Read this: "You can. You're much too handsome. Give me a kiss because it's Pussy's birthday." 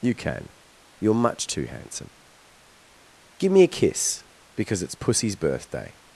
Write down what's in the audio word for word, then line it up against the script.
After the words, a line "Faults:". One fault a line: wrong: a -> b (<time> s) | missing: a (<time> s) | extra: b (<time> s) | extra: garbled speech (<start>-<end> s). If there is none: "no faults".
"You can. You're much too handsome. Give me a kiss because it's Pussy's birthday."
Faults:
no faults